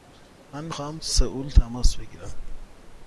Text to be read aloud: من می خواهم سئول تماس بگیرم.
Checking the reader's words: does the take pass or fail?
pass